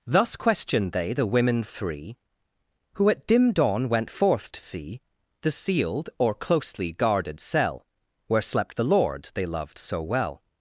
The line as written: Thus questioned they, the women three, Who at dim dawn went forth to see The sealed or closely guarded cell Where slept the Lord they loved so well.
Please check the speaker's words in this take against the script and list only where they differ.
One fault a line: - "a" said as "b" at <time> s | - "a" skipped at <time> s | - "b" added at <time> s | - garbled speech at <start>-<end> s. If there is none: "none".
none